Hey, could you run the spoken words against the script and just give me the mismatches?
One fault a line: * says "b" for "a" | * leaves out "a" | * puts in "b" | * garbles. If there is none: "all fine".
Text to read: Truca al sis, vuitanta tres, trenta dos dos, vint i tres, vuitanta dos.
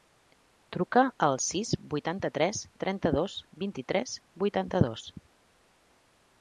* leaves out "dos"